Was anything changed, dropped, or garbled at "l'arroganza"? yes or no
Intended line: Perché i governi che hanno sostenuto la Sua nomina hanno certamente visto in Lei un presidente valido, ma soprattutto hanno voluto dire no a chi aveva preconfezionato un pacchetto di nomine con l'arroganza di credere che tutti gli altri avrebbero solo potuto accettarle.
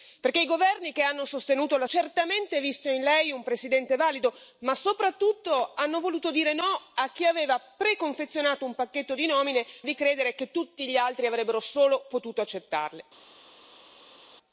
yes